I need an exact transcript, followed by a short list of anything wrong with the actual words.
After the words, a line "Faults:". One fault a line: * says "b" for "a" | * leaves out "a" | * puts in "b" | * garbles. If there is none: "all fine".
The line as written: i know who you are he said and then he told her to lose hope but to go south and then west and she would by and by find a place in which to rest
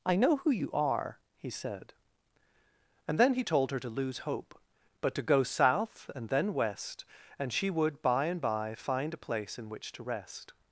i know who you are he said and then he told her to lose hope but to go south and then west and she would by and by find a place in which to rest
Faults:
all fine